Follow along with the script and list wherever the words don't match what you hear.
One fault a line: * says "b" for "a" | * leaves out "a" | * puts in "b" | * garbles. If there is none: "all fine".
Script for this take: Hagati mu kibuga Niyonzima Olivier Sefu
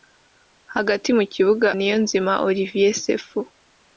all fine